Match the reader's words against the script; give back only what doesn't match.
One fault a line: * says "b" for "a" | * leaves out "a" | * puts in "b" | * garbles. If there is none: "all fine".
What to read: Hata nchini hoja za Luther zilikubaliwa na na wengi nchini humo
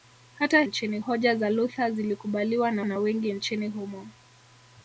all fine